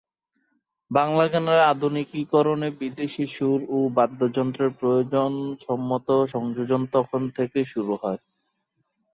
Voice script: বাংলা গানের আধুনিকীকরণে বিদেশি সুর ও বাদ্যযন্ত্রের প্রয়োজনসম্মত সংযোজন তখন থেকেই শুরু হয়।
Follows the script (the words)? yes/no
yes